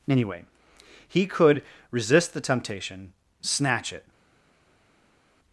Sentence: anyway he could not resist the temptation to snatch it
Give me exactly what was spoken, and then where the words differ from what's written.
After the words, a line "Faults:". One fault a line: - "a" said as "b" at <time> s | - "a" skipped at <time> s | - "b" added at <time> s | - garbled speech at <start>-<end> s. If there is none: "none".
anyway he could resist the temptation snatch it
Faults:
- "not" skipped at 1.6 s
- "to" skipped at 3.1 s